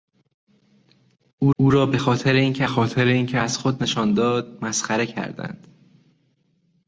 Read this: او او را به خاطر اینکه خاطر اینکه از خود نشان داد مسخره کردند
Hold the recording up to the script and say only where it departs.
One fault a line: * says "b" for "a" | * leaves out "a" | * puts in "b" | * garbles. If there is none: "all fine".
all fine